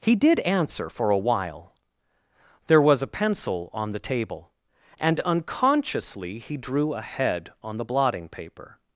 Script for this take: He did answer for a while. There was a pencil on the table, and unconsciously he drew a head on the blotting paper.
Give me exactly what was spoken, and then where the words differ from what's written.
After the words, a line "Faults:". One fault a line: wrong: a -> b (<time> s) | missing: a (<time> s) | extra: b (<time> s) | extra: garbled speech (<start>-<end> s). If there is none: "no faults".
He did answer for a while. There was a pencil on the table, and unconsciously he drew a head on the blotting paper.
Faults:
no faults